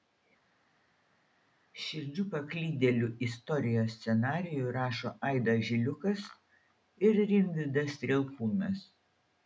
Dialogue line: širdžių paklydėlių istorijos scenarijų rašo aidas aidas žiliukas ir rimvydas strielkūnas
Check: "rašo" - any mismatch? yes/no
no